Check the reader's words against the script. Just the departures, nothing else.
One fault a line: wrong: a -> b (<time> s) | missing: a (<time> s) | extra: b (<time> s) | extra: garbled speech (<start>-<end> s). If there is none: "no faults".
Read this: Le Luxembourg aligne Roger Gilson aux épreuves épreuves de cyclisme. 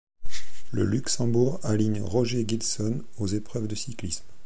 missing: épreuves (3.7 s)